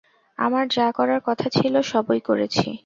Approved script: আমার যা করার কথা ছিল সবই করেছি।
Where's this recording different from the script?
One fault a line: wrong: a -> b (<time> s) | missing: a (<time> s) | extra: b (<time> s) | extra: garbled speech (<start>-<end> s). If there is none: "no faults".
no faults